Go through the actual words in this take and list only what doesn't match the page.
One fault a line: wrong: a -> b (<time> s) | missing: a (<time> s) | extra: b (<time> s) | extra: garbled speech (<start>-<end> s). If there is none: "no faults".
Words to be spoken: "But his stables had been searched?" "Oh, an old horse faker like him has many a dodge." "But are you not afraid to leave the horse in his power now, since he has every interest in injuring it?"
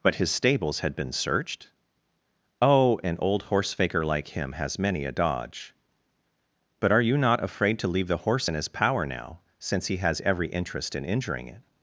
no faults